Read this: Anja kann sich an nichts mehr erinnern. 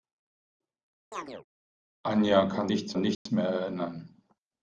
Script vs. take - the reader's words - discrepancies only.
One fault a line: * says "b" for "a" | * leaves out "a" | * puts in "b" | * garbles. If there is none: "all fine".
* says "nichts" for "sich"